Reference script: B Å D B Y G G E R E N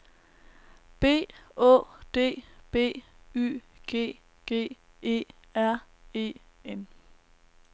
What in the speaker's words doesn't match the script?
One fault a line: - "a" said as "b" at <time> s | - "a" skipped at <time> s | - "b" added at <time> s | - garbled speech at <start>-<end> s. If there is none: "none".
none